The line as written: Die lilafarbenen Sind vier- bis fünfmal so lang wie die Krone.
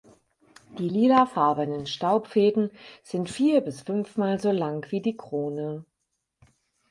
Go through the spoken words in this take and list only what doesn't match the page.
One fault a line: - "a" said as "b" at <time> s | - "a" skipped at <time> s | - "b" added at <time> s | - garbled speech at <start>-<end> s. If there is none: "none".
- "Staubfäden" added at 1.8 s